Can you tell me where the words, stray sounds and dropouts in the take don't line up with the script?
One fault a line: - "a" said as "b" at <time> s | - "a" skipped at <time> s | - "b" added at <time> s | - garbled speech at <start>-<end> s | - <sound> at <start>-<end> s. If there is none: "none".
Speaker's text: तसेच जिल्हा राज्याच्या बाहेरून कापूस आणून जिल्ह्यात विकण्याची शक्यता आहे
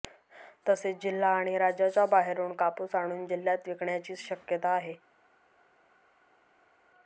- "आणि" added at 1.3 s